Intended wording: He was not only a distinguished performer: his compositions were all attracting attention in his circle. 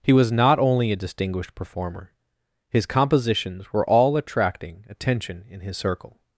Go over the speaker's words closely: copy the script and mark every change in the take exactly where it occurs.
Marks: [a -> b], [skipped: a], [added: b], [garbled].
He was not only a distinguished performer: his compositions were all attracting attention in his circle.